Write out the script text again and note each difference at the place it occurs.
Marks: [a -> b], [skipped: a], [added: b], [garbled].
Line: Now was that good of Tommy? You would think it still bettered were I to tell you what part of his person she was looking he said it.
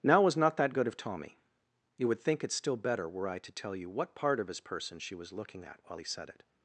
Now was [added: not] that good of Tommy? You would think it still [bettered -> better] were I to tell you what part of his person she was looking [added: at while] he said it.